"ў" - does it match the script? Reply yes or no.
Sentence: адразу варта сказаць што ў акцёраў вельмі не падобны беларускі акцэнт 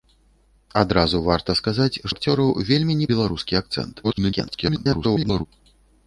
no